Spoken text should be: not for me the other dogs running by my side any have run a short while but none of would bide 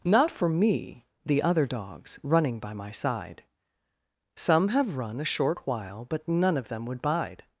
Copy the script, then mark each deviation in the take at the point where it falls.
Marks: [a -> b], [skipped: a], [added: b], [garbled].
not for me the other dogs running by my side [any -> some] have run a short while but none of [added: them] would bide